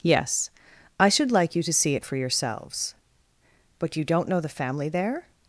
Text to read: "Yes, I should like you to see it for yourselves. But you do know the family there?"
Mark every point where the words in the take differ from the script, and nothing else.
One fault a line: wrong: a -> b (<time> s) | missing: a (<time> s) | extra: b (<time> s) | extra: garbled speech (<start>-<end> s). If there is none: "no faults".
wrong: do -> don't (4.0 s)